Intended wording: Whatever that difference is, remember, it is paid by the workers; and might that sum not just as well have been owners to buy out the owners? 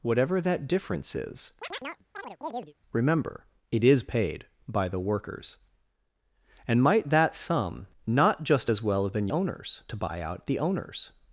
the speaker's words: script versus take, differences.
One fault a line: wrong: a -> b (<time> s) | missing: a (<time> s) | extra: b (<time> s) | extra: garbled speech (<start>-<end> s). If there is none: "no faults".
no faults